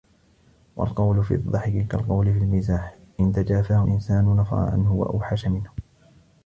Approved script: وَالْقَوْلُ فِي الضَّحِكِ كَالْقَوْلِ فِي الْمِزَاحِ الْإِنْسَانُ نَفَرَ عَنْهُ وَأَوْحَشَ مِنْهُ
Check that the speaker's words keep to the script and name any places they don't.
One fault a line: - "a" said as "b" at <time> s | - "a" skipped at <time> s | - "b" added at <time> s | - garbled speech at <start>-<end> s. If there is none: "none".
- "إنْ تَجَافَاهُ" added at 3.2 s